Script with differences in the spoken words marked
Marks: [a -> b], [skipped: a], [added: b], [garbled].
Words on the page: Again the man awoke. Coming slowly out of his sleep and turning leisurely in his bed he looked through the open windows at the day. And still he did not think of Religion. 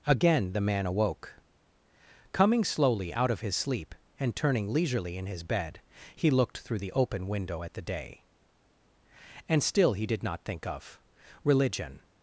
Again the man awoke. Coming slowly out of his sleep and turning leisurely in his bed he looked through the open [windows -> window] at the day. And still he did not think of Religion.